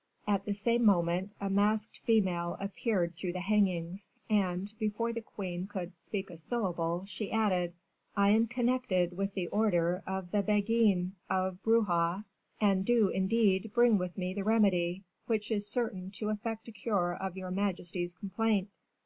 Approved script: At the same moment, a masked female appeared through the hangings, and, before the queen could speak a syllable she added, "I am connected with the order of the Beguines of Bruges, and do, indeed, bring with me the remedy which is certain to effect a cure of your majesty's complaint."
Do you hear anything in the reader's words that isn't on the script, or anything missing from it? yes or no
no